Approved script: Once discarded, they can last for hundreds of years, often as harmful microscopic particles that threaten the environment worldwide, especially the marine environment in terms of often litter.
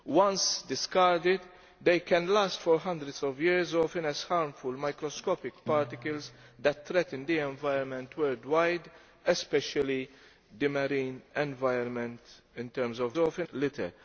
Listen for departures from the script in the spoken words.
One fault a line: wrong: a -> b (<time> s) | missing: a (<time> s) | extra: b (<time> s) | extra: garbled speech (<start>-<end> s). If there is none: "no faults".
no faults